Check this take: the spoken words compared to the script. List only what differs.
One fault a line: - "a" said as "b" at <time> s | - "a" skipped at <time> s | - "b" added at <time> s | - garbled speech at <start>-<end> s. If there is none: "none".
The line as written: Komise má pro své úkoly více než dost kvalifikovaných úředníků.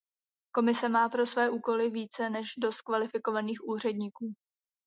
none